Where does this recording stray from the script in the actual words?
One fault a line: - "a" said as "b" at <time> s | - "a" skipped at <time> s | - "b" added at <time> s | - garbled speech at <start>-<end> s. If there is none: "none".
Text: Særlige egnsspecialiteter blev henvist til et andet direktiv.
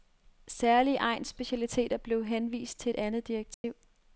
none